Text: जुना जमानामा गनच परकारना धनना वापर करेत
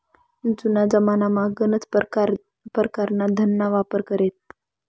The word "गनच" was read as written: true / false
true